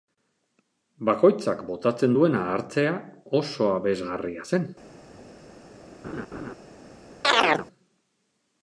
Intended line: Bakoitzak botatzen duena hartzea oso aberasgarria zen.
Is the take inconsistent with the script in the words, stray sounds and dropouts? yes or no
yes